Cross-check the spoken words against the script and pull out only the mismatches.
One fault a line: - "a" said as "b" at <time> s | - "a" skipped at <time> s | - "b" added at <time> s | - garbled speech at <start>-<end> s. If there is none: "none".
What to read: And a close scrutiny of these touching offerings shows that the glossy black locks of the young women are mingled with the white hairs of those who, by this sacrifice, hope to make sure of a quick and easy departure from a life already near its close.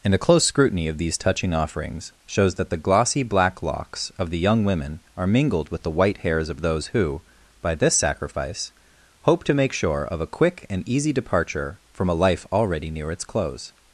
none